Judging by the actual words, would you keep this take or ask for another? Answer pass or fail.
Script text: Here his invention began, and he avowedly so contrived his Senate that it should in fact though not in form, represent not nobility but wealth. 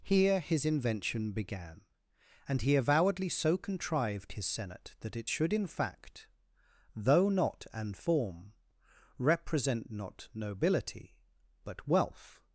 fail